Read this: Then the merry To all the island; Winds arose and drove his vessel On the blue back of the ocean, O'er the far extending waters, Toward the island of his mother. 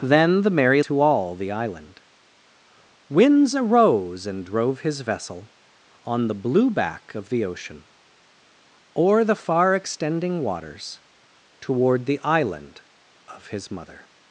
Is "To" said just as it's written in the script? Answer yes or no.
yes